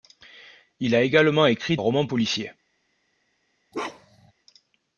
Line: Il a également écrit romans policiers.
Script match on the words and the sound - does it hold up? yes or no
no